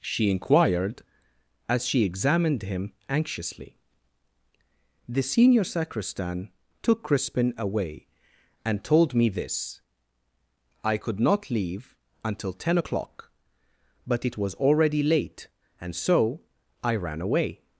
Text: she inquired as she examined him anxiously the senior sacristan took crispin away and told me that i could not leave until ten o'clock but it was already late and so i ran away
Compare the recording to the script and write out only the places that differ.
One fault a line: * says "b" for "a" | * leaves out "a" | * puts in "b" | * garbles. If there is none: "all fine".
* says "this" for "that"